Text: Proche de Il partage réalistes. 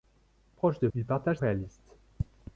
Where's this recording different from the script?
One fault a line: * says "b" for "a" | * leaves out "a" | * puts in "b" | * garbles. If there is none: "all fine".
all fine